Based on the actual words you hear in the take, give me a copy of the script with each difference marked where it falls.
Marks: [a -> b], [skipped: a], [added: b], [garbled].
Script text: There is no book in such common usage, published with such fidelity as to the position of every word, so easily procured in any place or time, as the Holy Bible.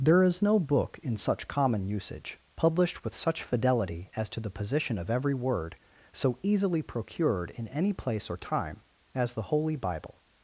There is no book in such common usage, published with such fidelity as to the position of every word, so easily procured in any place or time, as the Holy Bible.